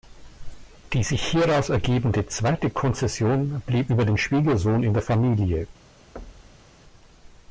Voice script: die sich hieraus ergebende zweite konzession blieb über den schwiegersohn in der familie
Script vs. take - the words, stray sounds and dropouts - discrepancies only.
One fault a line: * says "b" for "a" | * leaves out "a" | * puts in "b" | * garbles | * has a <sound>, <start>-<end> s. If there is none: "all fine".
* has a thud, 6.2-6.7 s